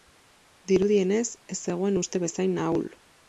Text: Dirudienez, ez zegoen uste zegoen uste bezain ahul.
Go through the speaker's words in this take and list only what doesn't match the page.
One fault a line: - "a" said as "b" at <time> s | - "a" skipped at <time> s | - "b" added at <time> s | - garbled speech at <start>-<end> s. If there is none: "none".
- "zegoen uste" skipped at 2.2 s